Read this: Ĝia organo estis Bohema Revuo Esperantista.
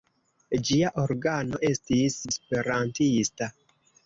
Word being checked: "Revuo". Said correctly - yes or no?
no